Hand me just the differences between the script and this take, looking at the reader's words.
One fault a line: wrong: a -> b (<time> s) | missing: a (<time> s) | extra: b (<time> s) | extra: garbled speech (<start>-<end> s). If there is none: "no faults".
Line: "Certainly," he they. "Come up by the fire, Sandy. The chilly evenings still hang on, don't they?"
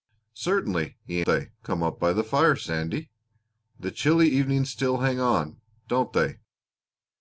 no faults